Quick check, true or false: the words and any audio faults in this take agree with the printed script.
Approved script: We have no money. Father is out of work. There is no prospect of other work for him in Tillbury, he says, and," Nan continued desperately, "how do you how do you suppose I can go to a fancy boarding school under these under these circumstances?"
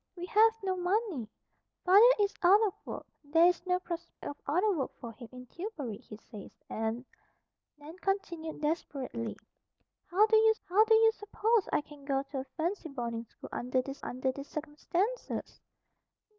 false